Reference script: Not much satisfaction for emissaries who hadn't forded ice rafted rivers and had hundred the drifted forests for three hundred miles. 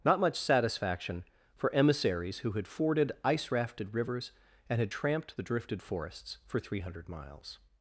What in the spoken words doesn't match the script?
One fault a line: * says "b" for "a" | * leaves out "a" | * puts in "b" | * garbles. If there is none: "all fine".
* says "had" for "hadn't"
* says "tramped" for "hundred"